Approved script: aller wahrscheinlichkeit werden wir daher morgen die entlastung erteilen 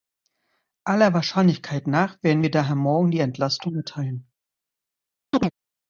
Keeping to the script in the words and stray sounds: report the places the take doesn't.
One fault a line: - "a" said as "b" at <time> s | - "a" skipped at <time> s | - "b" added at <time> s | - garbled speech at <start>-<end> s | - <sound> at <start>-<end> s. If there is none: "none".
- "nach" added at 1.9 s
- chirp at 5.3-5.5 s